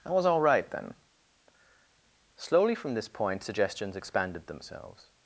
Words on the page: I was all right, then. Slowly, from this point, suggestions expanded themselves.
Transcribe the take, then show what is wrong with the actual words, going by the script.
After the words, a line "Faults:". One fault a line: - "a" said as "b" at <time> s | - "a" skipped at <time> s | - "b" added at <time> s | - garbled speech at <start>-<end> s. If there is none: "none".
I was all right, then. Slowly, from this point, suggestions expanded themselves.
Faults:
none